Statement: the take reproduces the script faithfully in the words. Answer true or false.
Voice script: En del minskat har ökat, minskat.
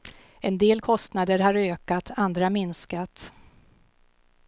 false